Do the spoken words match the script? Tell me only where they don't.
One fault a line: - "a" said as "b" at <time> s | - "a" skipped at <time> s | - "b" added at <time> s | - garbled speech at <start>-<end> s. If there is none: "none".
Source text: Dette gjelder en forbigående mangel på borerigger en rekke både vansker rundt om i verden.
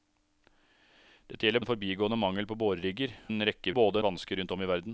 none